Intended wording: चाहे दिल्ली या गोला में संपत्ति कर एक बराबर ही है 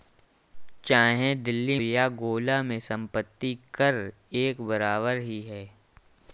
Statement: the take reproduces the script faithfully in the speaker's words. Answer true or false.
true